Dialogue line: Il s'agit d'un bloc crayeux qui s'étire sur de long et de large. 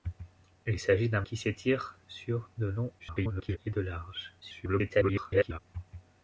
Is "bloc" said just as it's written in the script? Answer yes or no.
no